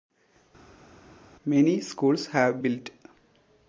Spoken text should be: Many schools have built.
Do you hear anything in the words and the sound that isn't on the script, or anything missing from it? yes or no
no